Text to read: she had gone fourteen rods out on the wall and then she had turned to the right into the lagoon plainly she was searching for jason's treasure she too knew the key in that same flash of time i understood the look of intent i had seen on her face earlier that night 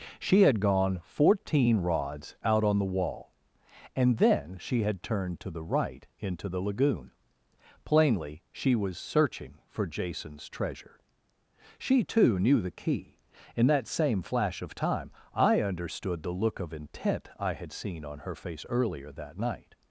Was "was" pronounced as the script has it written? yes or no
yes